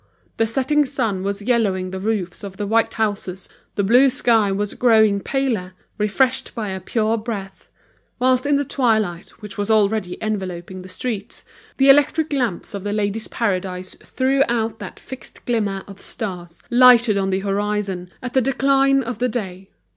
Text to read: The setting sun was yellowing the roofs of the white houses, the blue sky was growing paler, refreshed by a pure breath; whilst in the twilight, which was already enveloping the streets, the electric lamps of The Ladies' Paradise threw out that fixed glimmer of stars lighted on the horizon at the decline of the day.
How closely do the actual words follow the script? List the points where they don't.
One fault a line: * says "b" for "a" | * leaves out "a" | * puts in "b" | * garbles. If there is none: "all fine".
all fine